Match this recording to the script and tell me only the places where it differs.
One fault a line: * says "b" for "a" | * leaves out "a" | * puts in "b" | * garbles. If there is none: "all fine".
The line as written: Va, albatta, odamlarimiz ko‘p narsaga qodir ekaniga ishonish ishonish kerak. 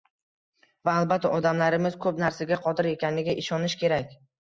* leaves out "ishonish"